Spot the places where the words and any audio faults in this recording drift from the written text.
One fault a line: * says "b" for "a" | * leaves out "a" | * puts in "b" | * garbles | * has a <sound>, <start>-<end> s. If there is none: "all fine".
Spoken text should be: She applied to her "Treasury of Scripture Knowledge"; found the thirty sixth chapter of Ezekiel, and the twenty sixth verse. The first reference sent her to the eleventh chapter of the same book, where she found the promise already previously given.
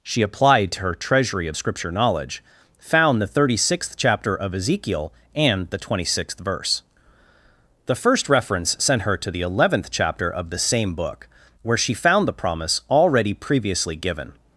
all fine